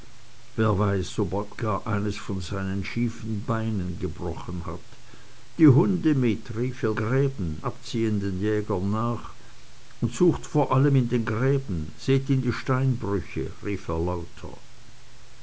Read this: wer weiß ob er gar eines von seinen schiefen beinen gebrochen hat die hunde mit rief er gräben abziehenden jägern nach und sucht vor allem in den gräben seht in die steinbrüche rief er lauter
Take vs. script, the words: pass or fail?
pass